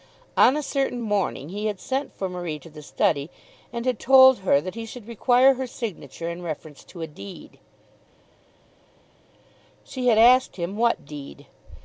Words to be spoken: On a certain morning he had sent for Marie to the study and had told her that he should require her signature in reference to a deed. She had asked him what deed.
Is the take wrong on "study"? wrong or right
right